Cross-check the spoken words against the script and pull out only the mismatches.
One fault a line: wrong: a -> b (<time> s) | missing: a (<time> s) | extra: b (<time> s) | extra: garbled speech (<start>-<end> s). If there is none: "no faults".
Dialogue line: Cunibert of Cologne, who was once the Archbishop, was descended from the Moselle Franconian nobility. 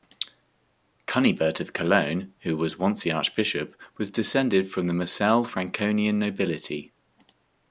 no faults